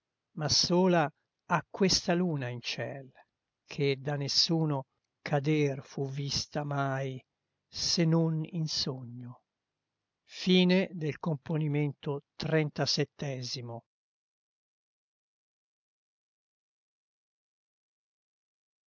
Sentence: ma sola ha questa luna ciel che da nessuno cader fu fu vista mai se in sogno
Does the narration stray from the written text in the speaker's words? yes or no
yes